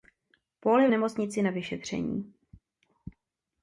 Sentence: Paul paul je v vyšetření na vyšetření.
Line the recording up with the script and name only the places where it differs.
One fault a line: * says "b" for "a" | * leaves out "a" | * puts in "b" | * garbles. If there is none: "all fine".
* leaves out "paul"
* says "nemocnici" for "vyšetření"